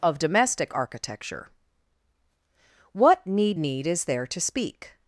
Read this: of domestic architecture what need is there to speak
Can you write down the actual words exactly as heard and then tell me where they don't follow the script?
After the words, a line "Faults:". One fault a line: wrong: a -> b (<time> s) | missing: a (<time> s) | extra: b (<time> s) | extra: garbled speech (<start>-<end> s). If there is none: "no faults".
of domestic architecture what need need is there to speak
Faults:
extra: need (3.6 s)